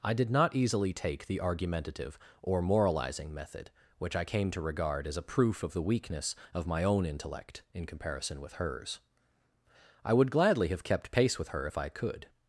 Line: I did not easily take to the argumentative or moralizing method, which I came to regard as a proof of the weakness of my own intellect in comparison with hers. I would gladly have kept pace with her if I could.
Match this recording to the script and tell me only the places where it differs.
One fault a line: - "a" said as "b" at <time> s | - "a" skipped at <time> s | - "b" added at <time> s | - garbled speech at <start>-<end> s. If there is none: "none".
- "to" skipped at 1.3 s